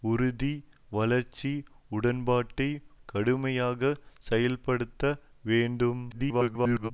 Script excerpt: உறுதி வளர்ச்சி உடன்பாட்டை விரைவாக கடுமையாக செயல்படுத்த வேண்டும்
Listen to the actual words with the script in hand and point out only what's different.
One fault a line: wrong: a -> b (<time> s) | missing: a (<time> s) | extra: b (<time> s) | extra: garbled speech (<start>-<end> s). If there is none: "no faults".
missing: விரைவாக (2.7 s)
extra: garbled speech (6.1-6.9 s)